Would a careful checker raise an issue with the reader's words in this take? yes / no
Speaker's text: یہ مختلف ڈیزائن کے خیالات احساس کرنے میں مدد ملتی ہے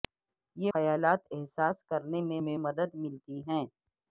yes